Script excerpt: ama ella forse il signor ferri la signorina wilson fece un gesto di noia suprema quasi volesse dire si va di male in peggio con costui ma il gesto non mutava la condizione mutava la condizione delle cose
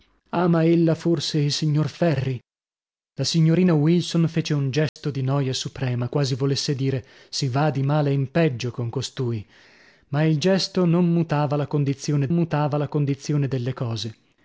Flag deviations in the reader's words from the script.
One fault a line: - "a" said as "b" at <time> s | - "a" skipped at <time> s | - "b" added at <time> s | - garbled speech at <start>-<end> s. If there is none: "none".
none